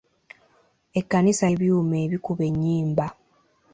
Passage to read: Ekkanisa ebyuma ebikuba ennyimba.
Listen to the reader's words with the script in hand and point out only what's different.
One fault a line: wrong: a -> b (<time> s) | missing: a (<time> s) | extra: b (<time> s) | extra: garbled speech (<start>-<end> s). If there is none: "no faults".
no faults